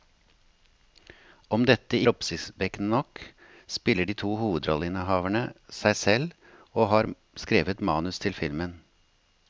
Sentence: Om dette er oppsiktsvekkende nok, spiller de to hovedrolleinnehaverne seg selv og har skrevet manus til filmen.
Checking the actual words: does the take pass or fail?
pass